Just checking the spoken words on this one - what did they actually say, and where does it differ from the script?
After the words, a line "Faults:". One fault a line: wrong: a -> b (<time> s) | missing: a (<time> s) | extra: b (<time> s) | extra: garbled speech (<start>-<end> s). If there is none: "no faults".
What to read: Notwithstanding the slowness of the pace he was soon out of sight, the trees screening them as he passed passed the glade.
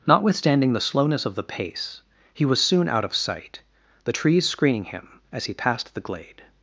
Notwithstanding the slowness of the pace he was soon out of sight, the trees screening him as he passed the glade.
Faults:
wrong: them -> him (4.8 s)
missing: passed (5.9 s)